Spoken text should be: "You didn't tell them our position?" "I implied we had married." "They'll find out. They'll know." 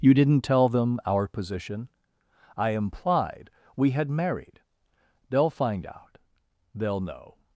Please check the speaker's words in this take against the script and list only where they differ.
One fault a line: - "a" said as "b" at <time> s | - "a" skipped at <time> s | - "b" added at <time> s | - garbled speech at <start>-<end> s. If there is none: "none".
none